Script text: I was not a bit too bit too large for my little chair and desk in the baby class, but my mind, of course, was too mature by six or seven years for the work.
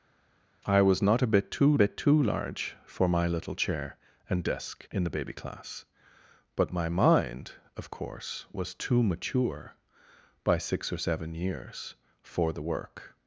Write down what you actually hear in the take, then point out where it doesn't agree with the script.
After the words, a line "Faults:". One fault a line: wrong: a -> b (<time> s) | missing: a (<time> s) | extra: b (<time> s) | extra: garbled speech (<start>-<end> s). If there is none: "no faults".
I was not a bit too bit too large for my little chair and desk in the baby class, but my mind, of course, was too mature by six or seven years for the work.
Faults:
no faults